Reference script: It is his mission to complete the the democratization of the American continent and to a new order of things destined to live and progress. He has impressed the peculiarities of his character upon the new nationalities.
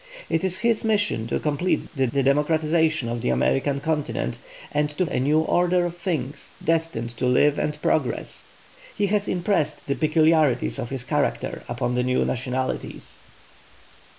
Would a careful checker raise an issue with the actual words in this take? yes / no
no